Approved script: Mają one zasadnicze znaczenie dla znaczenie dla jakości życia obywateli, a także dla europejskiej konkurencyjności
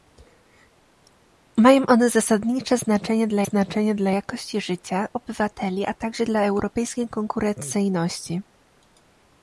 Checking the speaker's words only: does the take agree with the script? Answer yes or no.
yes